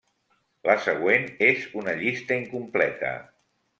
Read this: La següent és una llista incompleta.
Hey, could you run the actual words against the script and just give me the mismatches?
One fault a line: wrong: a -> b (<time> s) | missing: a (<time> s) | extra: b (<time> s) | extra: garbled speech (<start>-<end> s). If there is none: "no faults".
no faults